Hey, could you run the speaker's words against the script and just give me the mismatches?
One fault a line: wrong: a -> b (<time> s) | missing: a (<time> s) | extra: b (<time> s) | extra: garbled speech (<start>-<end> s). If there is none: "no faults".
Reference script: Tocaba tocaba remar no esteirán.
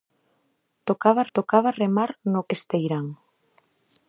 no faults